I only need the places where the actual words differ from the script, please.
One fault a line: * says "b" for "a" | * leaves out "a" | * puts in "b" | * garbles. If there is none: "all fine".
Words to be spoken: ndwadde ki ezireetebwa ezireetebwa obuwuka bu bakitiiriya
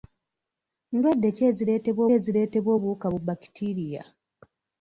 all fine